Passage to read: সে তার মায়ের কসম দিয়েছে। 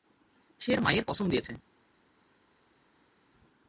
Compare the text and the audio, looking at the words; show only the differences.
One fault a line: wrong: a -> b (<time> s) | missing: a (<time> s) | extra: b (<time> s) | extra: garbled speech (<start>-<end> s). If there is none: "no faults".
missing: তার (0.7 s)